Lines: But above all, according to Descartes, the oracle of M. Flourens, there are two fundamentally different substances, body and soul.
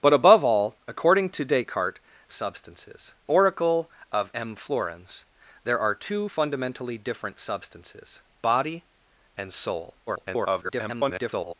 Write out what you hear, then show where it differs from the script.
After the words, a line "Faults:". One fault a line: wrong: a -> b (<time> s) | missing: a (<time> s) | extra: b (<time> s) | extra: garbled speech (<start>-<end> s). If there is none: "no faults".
But above all, according to Descartes, substances oracle of M. Flourens, there are two fundamentally different substances, body and soul. [garbled]
Faults:
wrong: the -> substances (2.3 s)
extra: garbled speech (10.1-11.5 s)